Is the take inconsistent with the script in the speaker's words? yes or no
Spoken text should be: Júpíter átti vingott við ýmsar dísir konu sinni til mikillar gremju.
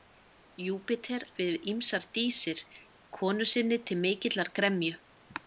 yes